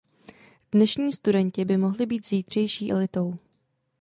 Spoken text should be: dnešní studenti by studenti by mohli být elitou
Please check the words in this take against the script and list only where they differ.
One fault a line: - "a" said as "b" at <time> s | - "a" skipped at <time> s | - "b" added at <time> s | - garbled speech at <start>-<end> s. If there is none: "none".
- "studenti by" skipped at 1.8 s
- "zítřejší" added at 2.3 s